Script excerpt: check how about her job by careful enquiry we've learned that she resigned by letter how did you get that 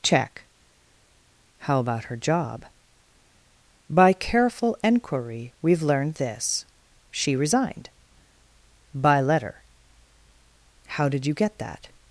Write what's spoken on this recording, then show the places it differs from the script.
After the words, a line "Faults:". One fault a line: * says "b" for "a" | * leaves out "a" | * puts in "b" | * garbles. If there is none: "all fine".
check how about her job by careful enquiry we've learned this she resigned by letter how did you get that
Faults:
* says "this" for "that"